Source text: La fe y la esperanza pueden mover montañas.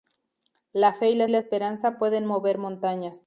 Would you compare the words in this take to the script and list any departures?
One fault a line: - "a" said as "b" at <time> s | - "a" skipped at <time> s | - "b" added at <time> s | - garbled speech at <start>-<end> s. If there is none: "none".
- "la" added at 1.3 s